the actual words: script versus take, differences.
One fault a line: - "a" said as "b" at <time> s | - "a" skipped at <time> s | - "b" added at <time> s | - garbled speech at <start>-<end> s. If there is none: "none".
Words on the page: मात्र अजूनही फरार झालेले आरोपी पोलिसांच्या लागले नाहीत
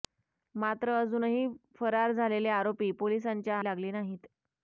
none